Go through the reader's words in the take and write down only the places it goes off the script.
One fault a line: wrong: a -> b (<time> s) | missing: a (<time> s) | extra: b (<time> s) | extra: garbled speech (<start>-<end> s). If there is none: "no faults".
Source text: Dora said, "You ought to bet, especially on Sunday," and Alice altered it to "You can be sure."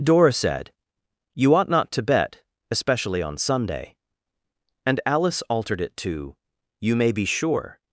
extra: not (1.7 s)
wrong: can -> may (6.9 s)